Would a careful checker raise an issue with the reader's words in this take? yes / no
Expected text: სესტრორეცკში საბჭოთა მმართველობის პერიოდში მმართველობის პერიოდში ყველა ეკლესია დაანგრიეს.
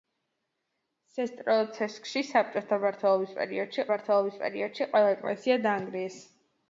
no